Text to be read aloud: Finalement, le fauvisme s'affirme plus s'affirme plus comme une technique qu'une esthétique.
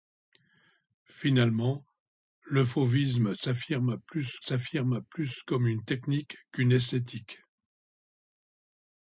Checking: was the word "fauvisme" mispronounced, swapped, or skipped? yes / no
no